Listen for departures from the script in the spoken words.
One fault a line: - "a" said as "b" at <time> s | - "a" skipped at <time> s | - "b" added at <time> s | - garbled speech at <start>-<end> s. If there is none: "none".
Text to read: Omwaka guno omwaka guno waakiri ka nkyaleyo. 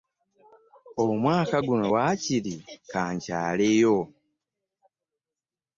- "omwaka guno" skipped at 1.9 s